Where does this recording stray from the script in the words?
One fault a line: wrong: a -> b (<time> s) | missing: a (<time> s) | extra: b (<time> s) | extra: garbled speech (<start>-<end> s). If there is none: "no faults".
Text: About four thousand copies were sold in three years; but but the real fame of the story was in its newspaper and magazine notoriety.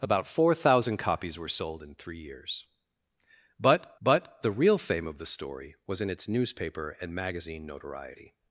no faults